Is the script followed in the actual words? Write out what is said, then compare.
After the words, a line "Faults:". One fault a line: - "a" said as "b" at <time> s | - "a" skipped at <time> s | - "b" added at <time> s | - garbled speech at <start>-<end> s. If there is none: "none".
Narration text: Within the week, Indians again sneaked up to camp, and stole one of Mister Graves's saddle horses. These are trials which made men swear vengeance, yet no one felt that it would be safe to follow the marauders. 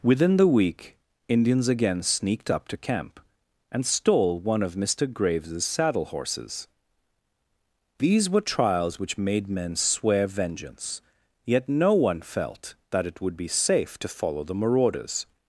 Within the week, Indians again sneaked up to camp, and stole one of Mister Graves's saddle horses. These were trials which made men swear vengeance, yet no one felt that it would be safe to follow the marauders.
Faults:
- "are" said as "were" at 8.3 s